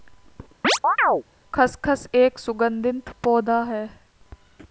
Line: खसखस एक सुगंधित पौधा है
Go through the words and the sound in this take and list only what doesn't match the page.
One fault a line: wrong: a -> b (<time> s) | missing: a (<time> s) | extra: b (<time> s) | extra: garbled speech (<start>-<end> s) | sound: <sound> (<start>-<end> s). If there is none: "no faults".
sound: chirp (0.6-1.2 s)